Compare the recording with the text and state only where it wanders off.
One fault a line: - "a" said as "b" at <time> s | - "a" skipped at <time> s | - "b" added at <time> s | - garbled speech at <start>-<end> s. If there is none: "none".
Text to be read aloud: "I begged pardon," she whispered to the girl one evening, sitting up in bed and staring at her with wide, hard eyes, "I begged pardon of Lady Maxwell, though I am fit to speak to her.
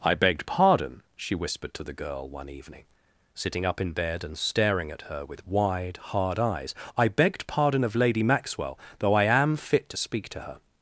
none